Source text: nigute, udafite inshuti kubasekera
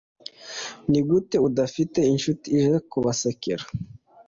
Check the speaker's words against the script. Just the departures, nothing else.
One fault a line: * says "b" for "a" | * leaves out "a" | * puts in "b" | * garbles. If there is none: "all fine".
* puts in "ije"